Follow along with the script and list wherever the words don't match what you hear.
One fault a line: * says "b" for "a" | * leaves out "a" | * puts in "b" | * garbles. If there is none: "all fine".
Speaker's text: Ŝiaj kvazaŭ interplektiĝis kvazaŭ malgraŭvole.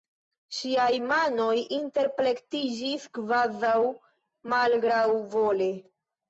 * says "manoj" for "kvazaŭ"